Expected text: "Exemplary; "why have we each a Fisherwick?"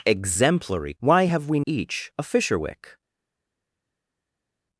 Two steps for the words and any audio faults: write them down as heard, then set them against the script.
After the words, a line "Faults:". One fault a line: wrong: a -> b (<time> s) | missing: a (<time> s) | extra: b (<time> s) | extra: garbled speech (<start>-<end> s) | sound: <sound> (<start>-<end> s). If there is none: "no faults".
"Exemplary; "why have we each a Fisherwick?"
Faults:
no faults